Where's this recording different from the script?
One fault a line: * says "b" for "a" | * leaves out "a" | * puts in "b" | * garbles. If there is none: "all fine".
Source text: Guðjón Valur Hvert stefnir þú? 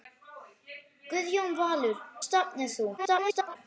* leaves out "Hvert"
* garbles